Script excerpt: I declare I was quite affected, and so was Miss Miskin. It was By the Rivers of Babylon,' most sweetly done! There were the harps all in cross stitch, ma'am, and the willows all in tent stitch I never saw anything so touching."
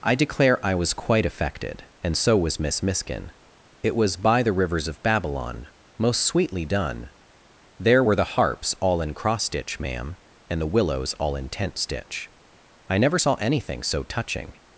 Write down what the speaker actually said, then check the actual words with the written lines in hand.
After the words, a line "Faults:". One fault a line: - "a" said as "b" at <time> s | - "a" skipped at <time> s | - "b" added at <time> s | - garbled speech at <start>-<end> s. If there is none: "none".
I declare I was quite affected, and so was Miss Miskin. It was By the Rivers of Babylon,' most sweetly done! There were the harps all in cross stitch, ma'am, and the willows all in tent stitch I never saw anything so touching."
Faults:
none